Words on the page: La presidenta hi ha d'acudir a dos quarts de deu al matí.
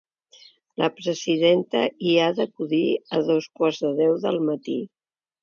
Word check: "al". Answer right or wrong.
wrong